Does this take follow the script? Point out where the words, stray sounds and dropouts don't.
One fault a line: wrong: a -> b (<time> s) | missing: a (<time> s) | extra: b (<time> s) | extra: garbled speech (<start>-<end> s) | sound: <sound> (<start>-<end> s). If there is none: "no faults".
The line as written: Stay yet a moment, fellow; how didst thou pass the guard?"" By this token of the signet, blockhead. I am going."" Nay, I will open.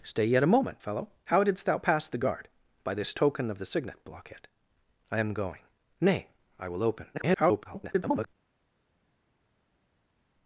extra: garbled speech (7.1-8.3 s)